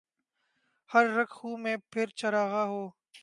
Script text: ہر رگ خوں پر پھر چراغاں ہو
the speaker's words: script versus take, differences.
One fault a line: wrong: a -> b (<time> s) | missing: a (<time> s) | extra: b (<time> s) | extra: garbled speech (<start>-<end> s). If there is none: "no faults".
wrong: پر -> میں (1.6 s)